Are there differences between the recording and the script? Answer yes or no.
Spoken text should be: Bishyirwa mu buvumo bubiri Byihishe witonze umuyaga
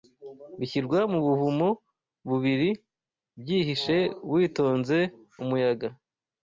no